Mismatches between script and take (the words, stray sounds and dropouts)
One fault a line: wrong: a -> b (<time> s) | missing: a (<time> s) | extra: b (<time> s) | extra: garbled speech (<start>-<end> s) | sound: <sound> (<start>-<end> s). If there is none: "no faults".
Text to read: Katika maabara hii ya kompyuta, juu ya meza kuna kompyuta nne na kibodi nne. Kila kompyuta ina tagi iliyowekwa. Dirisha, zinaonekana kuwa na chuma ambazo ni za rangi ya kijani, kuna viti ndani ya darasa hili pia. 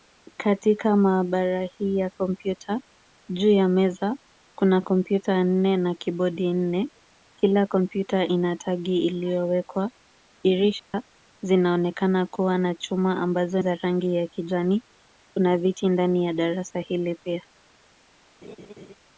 sound: dropout (10.8-10.9 s)
missing: ni (13.6 s)
sound: laugh (18.4-18.9 s)